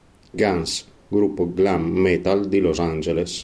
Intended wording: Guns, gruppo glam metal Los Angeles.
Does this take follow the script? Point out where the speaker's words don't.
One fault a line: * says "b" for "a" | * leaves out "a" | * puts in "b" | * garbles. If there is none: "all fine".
* puts in "di"